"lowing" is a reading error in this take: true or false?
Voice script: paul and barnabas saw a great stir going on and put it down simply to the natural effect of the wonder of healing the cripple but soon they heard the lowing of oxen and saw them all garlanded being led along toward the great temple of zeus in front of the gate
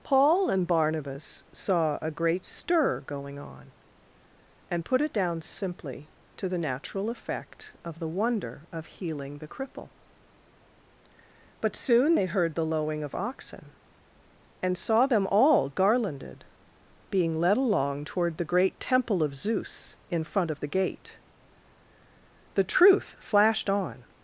false